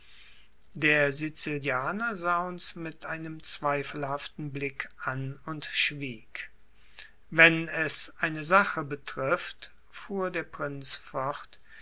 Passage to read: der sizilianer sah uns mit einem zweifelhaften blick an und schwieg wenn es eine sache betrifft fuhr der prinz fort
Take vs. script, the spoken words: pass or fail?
pass